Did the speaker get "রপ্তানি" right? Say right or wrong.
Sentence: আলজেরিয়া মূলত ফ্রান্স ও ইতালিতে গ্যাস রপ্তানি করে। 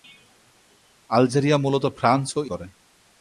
wrong